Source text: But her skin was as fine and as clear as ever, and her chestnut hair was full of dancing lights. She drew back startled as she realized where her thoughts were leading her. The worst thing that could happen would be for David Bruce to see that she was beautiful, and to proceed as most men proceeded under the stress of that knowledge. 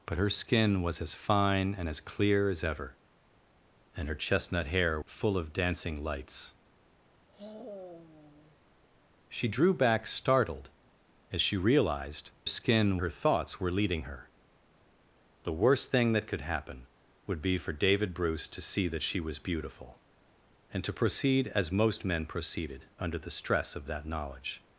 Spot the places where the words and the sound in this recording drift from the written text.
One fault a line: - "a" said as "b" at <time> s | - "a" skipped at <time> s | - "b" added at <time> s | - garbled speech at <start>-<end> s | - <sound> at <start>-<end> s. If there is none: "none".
- "was" skipped at 5.0 s
- sigh at 7.3-8.6 s
- "where" said as "skin" at 12.5 s